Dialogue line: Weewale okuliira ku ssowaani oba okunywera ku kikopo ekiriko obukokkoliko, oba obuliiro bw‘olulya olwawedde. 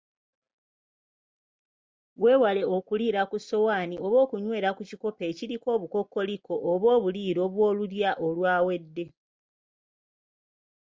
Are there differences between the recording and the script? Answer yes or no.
no